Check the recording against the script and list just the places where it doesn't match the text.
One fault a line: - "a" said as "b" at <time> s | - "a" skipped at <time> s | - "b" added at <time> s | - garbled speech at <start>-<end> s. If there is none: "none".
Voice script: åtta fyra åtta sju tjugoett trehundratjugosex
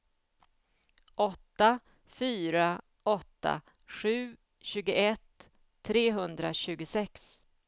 none